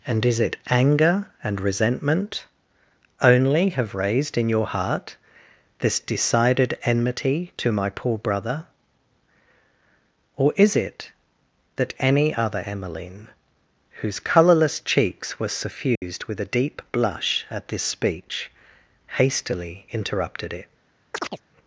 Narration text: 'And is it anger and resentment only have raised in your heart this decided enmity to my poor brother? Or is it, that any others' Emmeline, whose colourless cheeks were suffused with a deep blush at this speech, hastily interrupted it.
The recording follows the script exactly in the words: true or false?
false